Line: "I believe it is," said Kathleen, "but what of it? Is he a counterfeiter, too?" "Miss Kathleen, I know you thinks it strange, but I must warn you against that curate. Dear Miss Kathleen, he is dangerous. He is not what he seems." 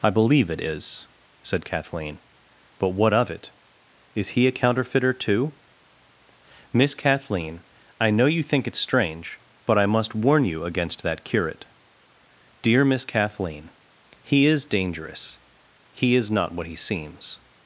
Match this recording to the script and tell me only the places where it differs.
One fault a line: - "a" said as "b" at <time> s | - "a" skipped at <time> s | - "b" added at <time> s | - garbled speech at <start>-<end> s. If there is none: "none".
- "thinks" said as "think" at 8.4 s